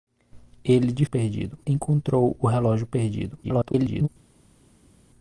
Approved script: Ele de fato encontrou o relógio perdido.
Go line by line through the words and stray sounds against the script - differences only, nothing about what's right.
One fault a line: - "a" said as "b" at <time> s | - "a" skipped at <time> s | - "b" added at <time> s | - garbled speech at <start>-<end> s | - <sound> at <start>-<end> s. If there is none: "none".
- "fato" said as "perdido" at 1.1 s
- garbled speech at 3.4-4.1 s